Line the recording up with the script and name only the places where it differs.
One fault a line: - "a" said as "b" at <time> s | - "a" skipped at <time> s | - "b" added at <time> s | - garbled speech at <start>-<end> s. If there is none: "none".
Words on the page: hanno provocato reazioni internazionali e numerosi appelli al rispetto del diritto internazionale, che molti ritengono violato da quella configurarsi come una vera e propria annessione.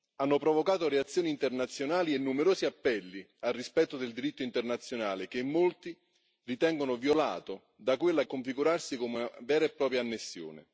none